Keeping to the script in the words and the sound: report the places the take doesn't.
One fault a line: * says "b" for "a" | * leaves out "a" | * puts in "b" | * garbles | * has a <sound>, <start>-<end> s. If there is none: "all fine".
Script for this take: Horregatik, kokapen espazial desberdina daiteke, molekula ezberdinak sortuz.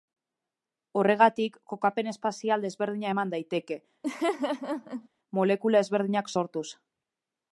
* puts in "eman"
* has a laugh, 4.0-5.1 s